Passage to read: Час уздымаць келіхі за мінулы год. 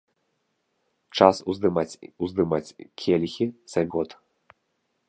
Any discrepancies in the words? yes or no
yes